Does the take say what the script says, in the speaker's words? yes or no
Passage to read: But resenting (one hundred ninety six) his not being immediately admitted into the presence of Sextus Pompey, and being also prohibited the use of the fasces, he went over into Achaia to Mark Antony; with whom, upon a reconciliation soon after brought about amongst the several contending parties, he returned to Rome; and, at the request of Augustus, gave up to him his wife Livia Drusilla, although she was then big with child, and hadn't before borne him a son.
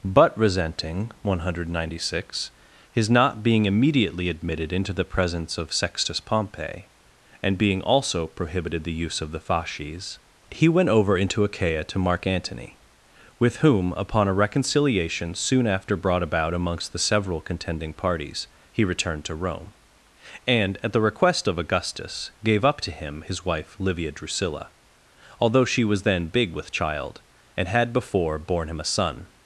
no